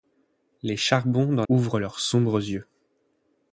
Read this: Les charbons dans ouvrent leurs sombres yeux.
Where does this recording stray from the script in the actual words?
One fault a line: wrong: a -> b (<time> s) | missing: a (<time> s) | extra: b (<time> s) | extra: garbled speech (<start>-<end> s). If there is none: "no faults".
no faults